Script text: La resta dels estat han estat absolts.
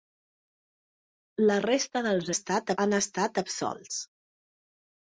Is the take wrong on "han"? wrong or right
right